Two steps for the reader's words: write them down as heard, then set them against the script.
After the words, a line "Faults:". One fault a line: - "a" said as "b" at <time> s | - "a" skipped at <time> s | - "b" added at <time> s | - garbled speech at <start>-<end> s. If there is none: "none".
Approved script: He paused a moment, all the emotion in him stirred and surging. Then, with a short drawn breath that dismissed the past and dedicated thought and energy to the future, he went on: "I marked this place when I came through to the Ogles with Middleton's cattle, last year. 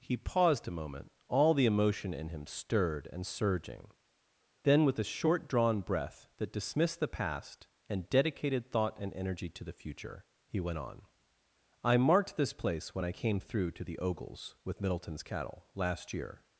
He paused a moment, all the emotion in him stirred and surging. Then, with a short drawn breath that dismissed the past and dedicated thought and energy to the future, he went on: "I marked this place when I came through to the Ogles with Middleton's cattle, last year.
Faults:
none